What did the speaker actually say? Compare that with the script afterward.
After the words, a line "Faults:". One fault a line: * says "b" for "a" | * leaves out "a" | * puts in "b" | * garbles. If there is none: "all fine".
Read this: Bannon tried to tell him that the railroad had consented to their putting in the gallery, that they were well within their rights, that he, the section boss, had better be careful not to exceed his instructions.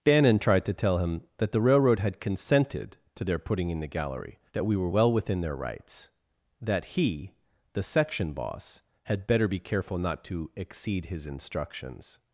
Bannon tried to tell him that the railroad had consented to their putting in the gallery, that we were well within their rights, that he, the section boss, had better be careful not to exceed his instructions.
Faults:
* says "we" for "they"